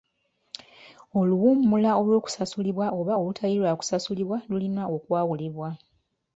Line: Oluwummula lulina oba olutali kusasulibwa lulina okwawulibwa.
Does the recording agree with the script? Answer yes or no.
no